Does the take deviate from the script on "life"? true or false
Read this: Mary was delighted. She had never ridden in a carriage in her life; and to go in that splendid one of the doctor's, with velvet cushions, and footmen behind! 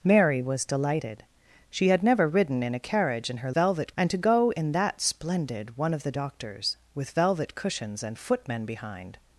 true